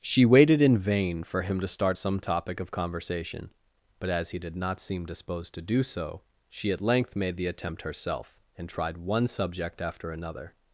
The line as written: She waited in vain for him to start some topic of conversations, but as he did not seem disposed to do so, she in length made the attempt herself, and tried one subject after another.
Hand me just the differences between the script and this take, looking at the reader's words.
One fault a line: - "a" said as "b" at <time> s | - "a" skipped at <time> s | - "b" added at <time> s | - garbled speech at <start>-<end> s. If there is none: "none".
- "conversations" said as "conversation" at 2.7 s
- "in" said as "at" at 6.7 s